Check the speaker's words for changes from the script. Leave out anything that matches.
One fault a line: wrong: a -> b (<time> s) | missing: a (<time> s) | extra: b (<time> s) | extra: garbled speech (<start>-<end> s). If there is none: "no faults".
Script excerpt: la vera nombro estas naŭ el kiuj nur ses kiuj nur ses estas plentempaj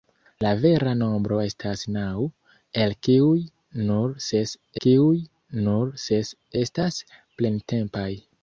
no faults